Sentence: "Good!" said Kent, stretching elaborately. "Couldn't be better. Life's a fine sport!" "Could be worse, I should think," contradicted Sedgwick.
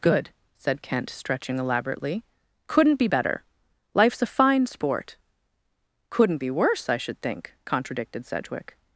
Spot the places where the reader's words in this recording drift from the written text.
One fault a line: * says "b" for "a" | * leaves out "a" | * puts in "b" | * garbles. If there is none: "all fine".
* says "Couldn't" for "Could"